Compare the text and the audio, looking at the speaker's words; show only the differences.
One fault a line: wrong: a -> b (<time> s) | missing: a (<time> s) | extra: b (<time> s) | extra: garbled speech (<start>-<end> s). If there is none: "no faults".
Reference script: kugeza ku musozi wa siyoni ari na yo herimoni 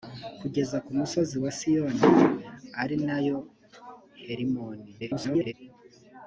extra: garbled speech (5.0-5.5 s)